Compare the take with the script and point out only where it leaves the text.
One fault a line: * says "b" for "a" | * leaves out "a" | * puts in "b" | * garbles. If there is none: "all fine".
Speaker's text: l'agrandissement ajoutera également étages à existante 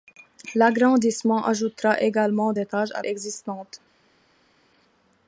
all fine